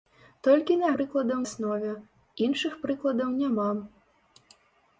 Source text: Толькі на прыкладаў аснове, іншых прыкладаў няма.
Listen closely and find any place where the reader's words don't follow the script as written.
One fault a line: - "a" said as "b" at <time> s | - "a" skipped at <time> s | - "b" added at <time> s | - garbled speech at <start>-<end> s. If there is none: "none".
none